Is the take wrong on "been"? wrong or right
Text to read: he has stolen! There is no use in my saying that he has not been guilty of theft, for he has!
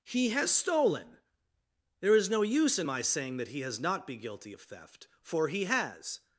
wrong